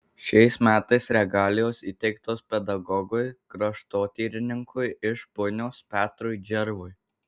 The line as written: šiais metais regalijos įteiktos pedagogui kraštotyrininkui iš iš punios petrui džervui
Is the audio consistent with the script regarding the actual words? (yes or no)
no